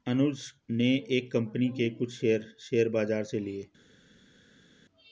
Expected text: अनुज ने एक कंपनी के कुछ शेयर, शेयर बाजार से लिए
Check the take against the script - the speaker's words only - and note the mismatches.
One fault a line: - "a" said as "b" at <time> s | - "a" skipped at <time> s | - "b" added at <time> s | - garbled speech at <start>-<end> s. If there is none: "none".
none